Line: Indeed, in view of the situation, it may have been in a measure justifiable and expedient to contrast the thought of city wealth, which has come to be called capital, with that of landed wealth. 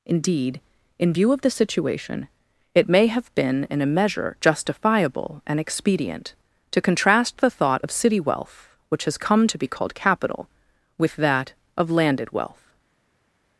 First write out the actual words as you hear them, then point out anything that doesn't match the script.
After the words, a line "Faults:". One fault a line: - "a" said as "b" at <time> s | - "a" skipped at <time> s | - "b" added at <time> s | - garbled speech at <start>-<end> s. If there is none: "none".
Indeed, in view of the situation, it may have been in a measure justifiable and expedient to contrast the thought of city wealth, which has come to be called capital, with that of landed wealth.
Faults:
none